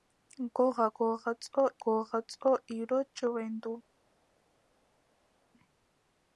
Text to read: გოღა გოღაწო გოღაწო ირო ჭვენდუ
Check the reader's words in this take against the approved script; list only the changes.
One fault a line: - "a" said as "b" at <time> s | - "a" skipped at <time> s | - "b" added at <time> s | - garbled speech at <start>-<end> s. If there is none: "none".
none